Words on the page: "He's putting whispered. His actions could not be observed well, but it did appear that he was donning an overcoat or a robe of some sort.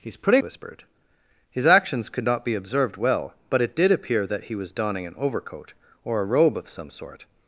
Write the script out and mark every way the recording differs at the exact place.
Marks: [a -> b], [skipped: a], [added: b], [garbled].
"He's putting whispered. His actions could not be observed well, but it did appear that he was donning an overcoat or a robe of some sort.